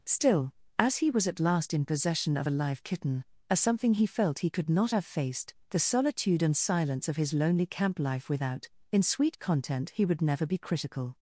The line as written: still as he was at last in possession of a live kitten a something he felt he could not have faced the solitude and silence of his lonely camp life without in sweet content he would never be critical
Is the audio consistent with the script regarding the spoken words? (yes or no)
yes